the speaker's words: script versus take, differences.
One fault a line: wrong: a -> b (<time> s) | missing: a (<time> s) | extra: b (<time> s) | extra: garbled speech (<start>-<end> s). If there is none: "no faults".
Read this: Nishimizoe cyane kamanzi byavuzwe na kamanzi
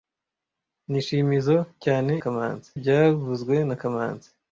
no faults